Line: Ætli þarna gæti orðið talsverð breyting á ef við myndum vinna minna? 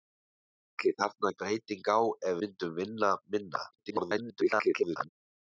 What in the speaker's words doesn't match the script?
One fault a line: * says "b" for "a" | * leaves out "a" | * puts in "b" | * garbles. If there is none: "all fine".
* leaves out "gæti orðið talsverð"
* leaves out "við"
* garbles